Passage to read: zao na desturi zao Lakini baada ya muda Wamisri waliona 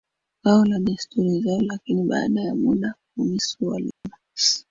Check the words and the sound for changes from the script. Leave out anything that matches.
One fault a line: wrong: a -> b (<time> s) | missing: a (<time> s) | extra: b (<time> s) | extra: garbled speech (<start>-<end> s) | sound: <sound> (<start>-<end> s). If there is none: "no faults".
sound: dropout (3.9-4.0 s)